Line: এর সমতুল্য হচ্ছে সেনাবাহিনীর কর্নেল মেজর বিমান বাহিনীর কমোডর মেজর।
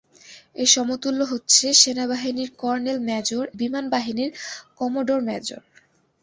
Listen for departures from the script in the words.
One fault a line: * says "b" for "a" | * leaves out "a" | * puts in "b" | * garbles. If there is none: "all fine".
all fine